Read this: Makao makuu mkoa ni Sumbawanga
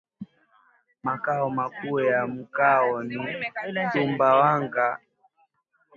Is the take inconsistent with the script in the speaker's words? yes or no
yes